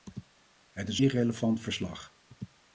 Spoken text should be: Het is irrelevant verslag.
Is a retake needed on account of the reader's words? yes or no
no